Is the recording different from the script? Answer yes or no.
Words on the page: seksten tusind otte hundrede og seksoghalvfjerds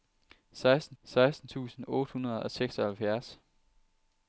yes